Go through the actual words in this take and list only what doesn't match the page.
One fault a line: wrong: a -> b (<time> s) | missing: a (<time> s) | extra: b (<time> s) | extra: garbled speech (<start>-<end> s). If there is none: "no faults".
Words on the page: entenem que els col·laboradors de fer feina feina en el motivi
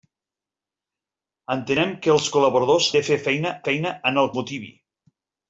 no faults